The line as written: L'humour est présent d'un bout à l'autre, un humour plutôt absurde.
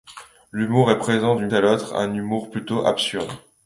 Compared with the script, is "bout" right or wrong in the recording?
wrong